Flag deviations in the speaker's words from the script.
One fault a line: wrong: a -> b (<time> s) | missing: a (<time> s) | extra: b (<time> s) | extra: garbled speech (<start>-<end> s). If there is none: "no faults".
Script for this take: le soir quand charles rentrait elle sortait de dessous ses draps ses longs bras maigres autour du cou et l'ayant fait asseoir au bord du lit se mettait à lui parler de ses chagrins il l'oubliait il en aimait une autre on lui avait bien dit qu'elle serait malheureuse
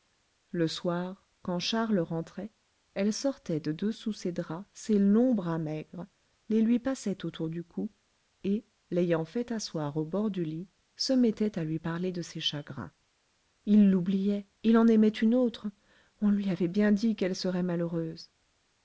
extra: les lui passait (6.5 s)